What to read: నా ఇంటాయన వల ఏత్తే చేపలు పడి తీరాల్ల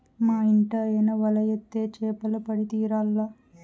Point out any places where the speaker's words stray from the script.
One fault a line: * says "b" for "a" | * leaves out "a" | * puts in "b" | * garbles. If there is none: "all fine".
* says "మా" for "నా"